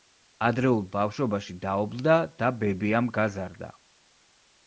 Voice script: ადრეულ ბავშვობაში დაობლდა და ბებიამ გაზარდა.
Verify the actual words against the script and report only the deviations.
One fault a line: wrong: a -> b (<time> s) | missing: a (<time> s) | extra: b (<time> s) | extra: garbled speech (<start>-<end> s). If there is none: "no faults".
no faults